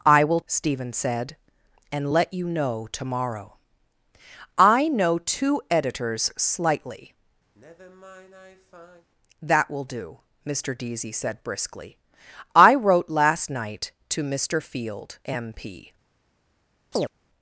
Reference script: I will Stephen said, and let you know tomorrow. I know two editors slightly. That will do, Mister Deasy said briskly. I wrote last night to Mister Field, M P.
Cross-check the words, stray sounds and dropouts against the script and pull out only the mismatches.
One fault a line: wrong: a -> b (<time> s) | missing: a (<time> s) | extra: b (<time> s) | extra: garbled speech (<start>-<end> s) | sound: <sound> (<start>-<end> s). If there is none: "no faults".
sound: sigh (7.5-9.1 s)
sound: chirp (16.9-17.1 s)